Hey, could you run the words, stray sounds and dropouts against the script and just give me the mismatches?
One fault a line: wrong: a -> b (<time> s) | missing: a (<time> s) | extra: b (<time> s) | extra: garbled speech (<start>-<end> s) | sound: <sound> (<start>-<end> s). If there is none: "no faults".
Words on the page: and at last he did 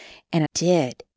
missing: at last he (0.4 s)